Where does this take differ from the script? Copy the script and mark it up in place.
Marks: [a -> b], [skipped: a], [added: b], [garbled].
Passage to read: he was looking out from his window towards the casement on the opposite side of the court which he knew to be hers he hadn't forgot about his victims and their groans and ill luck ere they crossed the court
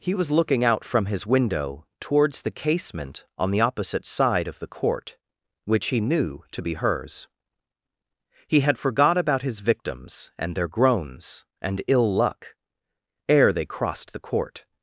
he was looking out from his window towards the casement on the opposite side of the court which he knew to be hers he [hadn't -> had] forgot about his victims and their groans and ill luck ere they crossed the court